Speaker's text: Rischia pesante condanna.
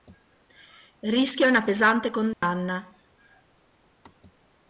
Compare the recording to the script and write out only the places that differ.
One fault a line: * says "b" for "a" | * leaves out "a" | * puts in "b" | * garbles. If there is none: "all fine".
* puts in "una"